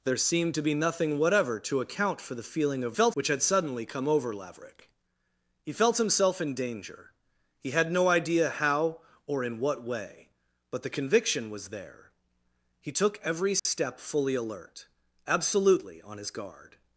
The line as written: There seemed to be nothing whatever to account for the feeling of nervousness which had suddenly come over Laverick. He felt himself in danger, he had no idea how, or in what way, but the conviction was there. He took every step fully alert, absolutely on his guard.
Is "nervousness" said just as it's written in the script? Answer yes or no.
no